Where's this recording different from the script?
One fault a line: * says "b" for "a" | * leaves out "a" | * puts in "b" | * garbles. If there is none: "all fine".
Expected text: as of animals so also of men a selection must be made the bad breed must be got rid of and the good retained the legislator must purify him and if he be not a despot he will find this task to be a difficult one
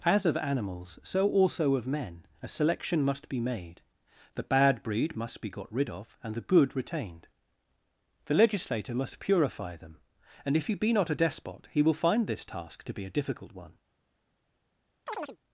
* says "them" for "him"